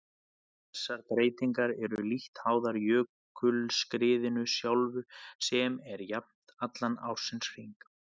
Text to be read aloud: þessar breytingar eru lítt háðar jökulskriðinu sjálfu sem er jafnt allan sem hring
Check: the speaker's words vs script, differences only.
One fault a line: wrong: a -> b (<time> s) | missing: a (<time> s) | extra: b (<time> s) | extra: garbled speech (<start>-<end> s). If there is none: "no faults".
wrong: sem -> ársins (7.1 s)